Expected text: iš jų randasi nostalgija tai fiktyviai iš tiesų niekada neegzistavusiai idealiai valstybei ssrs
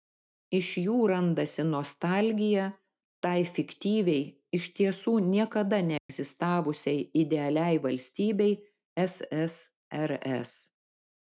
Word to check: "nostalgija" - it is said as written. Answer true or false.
true